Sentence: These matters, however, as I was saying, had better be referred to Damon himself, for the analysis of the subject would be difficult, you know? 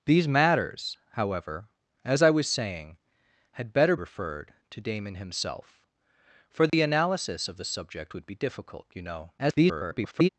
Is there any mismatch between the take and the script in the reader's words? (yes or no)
yes